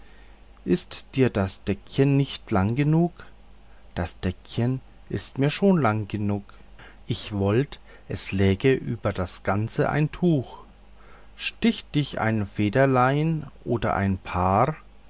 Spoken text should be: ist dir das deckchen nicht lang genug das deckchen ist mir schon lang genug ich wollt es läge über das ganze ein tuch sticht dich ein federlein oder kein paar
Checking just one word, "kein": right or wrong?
wrong